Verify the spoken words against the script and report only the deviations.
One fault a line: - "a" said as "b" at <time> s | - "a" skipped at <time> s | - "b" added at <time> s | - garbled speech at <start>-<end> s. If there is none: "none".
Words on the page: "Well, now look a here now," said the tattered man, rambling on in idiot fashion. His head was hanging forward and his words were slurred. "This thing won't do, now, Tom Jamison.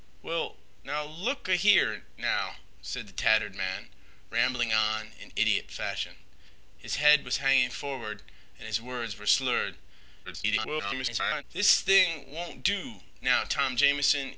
- garbled speech at 10.2-11.4 s